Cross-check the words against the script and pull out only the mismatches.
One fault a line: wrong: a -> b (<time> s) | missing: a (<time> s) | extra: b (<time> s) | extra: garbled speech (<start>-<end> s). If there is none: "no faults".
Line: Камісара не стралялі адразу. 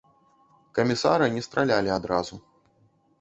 no faults